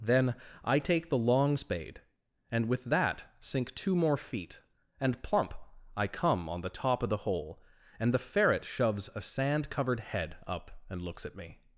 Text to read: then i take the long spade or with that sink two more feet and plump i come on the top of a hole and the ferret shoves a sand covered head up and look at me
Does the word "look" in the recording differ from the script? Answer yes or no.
yes